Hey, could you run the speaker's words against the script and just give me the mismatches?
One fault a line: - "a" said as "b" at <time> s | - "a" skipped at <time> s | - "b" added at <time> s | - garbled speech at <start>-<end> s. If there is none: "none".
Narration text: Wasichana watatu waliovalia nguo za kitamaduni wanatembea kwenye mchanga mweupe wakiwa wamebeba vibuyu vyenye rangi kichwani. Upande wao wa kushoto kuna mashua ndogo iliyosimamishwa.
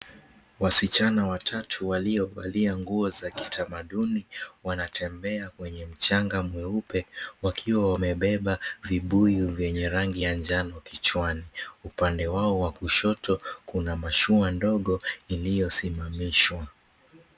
- "ya njano" added at 10.2 s